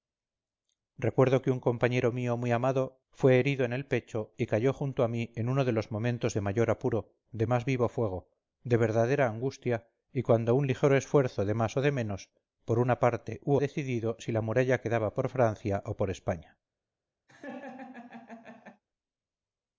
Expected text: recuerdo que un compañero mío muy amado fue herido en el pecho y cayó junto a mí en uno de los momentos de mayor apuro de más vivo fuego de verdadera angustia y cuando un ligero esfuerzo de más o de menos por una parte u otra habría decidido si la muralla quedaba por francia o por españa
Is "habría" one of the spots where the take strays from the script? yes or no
yes